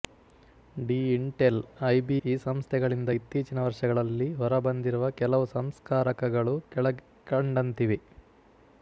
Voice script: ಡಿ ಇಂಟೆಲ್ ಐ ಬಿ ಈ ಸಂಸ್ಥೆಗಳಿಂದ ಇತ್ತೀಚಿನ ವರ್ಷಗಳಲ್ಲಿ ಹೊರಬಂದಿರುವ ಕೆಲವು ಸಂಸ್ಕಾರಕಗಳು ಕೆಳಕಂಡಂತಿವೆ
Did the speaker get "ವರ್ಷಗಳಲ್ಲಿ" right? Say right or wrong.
right